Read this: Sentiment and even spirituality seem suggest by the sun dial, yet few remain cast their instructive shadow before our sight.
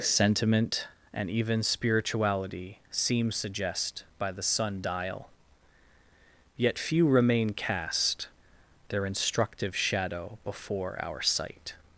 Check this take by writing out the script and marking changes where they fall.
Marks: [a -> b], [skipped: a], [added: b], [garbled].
Sentiment and even spirituality seem suggest by the sun dial, yet few remain cast their instructive shadow before our sight.